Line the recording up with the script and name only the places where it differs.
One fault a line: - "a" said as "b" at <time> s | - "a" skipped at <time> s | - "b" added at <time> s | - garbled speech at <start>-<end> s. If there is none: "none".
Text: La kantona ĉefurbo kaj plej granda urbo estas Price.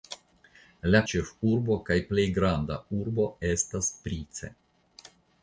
- "kantona" skipped at 1.0 s